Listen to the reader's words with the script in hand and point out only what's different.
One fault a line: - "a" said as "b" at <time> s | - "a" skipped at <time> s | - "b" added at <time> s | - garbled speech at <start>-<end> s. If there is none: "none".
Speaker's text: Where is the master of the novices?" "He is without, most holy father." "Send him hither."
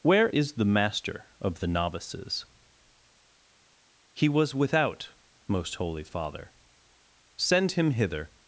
- "is" said as "was" at 4.3 s